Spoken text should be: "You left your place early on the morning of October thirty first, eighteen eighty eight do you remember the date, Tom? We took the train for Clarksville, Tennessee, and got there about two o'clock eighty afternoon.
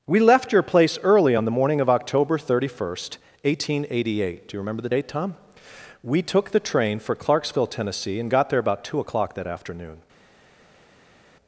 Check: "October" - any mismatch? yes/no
no